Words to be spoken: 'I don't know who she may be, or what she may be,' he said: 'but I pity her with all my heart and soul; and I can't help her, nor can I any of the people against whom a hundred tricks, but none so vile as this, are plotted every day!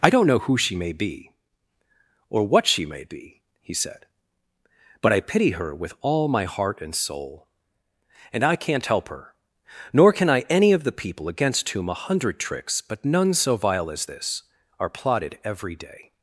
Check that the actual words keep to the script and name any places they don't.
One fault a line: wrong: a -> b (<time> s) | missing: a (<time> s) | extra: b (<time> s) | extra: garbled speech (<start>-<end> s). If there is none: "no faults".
no faults